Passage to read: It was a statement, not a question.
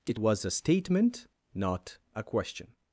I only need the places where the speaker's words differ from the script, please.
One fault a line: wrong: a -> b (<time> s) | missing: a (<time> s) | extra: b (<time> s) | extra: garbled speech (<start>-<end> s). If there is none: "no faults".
no faults